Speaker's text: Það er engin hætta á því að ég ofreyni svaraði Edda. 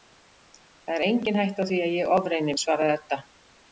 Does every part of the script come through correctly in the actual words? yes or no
yes